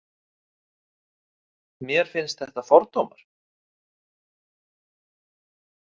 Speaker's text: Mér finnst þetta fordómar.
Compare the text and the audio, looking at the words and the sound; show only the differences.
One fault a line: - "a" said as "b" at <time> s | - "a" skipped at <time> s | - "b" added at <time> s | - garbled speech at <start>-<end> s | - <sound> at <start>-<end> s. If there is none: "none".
none